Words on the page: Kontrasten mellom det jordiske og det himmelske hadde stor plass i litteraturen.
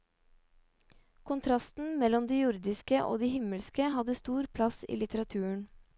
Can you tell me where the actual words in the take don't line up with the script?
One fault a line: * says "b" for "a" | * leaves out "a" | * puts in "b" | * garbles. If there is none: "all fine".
all fine